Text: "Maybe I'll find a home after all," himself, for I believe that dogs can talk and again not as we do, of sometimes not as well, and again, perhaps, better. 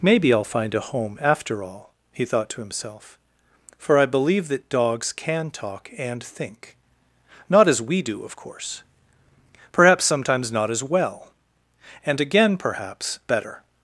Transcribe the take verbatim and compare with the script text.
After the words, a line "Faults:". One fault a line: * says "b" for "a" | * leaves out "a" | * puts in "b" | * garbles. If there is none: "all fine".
"Maybe I'll find a home after all," he thought to himself, for I believe that dogs can talk and think not as we do, of course; perhaps sometimes not as well, and again, perhaps, better.
Faults:
* puts in "he thought to"
* says "think" for "again"
* puts in "course perhaps"